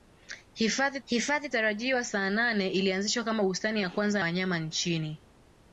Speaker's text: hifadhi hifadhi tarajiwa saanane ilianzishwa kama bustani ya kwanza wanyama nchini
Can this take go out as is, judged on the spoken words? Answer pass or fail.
pass